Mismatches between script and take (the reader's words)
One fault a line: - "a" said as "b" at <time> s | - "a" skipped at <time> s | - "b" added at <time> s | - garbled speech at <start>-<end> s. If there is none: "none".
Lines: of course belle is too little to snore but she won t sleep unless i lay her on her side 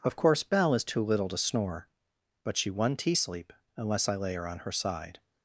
none